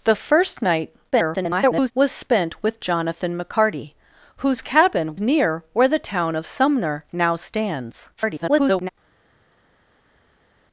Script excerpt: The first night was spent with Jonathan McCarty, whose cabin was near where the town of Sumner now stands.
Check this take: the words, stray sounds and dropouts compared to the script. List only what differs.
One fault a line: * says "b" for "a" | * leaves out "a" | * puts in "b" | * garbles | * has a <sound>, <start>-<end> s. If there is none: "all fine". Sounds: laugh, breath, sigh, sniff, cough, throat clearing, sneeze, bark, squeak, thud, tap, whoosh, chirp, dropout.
* garbles
* leaves out "was"
* garbles